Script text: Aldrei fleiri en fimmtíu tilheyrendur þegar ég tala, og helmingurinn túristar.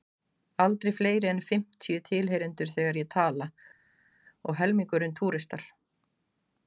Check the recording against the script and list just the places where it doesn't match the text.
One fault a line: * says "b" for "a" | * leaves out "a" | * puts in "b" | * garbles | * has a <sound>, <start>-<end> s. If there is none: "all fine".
all fine